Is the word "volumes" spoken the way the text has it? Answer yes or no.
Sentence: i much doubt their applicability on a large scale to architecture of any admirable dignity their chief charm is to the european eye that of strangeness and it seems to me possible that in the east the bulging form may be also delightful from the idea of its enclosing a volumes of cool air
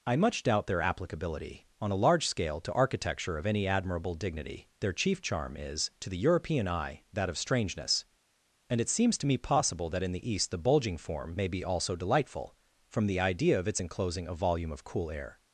no